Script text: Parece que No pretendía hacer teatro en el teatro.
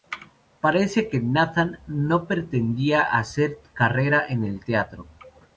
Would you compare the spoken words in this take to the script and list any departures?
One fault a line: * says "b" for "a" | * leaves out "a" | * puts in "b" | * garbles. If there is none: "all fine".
* puts in "Nathan"
* says "carrera" for "teatro"